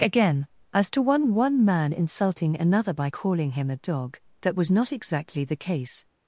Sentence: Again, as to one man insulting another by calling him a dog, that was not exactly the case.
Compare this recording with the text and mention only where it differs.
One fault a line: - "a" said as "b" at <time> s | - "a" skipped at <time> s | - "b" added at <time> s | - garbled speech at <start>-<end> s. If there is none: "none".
- "one" added at 1.4 s